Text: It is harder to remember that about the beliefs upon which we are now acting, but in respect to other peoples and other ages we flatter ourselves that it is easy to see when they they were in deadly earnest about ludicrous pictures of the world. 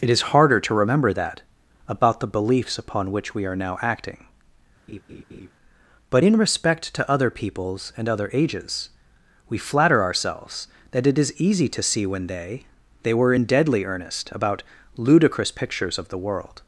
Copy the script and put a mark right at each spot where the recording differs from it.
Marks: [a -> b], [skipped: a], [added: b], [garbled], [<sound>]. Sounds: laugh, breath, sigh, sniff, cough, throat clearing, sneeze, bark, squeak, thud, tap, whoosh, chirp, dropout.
It is harder to remember that about the beliefs upon which we are now acting, [laugh] but in respect to other peoples and other ages we flatter ourselves that it is easy to see when they they were in deadly earnest about ludicrous pictures of the world.